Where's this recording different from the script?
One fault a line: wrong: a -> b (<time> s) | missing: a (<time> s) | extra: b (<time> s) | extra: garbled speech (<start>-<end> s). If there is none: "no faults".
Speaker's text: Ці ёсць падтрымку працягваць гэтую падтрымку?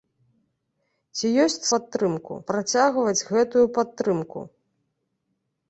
no faults